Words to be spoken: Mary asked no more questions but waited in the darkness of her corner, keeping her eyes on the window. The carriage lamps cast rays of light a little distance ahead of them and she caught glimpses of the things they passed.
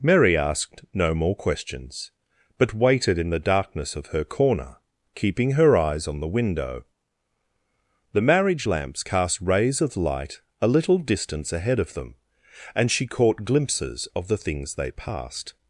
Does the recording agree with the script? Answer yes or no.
no